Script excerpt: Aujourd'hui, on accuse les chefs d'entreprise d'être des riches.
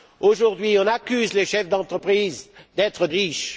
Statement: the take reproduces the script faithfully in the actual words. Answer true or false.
false